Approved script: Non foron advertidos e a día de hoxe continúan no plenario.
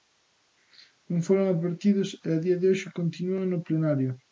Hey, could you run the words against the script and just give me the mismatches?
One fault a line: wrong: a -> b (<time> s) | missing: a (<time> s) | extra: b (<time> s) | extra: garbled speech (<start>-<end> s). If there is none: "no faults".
no faults